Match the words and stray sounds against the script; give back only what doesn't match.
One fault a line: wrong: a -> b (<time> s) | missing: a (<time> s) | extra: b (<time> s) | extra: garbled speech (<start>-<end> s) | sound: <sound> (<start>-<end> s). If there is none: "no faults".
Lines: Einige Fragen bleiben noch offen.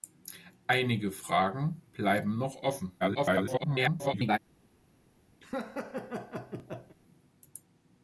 extra: garbled speech (3.0-4.4 s)
sound: laugh (5.4-7.0 s)